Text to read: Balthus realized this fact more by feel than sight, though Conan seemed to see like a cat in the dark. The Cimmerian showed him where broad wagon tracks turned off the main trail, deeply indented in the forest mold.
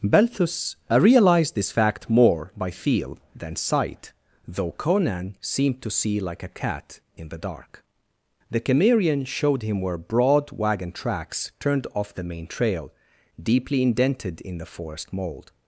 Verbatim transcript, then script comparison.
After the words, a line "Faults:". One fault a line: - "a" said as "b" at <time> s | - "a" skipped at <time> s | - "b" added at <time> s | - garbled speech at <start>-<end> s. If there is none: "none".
Balthus realized this fact more by feel than sight, though Conan seemed to see like a cat in the dark. The Cimmerian showed him where broad wagon tracks turned off the main trail, deeply indented in the forest mold.
Faults:
none